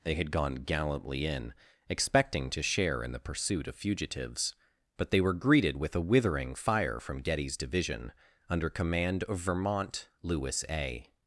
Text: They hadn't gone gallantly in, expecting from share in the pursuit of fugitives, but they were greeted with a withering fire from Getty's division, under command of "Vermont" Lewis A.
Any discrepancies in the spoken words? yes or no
yes